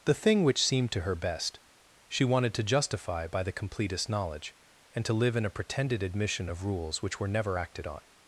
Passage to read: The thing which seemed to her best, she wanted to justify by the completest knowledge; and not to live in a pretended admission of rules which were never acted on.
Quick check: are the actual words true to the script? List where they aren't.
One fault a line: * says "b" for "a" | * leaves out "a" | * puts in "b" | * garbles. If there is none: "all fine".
* leaves out "not"